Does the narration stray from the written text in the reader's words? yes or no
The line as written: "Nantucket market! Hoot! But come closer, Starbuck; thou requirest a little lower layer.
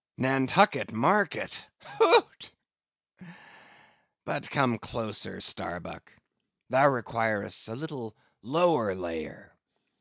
no